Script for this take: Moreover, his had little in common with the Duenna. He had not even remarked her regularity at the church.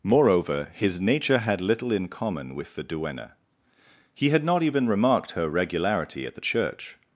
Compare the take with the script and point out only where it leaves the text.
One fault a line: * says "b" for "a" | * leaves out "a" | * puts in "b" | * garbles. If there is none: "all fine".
* puts in "nature"